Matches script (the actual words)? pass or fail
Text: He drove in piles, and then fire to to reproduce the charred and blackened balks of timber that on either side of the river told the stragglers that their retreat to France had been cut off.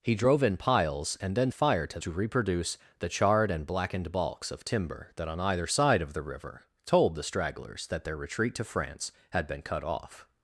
pass